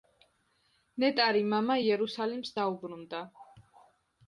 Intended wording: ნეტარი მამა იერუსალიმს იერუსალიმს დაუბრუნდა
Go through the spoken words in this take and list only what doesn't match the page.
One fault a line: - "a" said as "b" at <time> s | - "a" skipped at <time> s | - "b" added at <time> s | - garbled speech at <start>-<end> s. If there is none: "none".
- "იერუსალიმს" skipped at 2.6 s